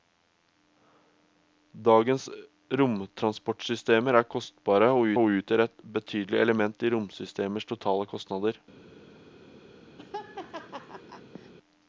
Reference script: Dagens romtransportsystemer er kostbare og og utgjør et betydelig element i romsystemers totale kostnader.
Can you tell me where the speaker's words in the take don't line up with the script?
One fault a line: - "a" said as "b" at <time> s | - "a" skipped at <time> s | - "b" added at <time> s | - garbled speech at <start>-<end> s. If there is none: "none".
none